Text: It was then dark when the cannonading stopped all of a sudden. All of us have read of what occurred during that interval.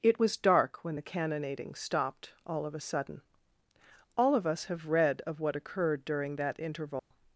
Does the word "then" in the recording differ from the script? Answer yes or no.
yes